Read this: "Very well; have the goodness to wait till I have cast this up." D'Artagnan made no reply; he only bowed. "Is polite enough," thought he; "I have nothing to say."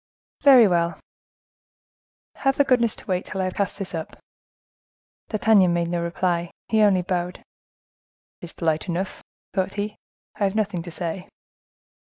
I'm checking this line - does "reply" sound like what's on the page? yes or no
yes